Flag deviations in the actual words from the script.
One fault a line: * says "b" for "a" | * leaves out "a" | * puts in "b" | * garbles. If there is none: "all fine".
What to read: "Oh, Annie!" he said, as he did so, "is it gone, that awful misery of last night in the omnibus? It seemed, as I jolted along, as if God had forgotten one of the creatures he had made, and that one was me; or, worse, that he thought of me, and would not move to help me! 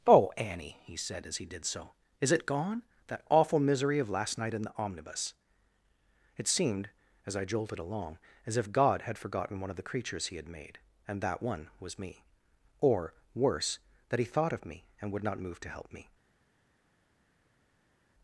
all fine